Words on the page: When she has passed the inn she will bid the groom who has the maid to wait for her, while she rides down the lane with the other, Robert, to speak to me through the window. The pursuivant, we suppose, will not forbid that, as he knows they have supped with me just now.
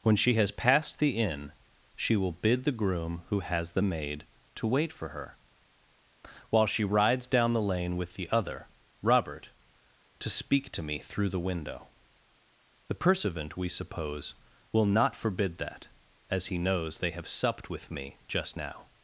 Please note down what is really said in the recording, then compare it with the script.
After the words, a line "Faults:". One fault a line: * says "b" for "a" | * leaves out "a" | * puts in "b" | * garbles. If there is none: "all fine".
When she has passed the inn she will bid the groom who has the maid to wait for her, while she rides down the lane with the other, Robert, to speak to me through the window. The pursuivant, we suppose, will not forbid that, as he knows they have supped with me just now.
Faults:
all fine